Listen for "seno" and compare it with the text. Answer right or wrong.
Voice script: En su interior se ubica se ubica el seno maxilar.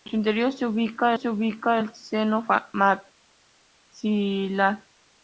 right